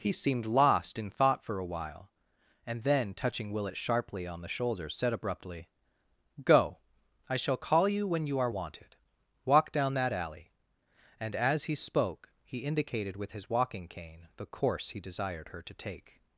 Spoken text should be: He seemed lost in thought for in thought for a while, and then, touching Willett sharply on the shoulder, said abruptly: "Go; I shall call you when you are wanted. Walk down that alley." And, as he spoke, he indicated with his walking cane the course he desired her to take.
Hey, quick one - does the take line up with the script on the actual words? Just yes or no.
no